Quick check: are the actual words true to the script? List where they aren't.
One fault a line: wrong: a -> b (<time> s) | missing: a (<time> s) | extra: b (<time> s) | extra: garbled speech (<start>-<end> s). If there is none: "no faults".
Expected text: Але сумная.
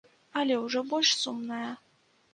extra: ўжо больш (0.6 s)